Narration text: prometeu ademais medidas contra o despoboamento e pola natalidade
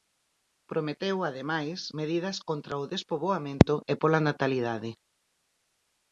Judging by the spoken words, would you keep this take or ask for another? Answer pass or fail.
pass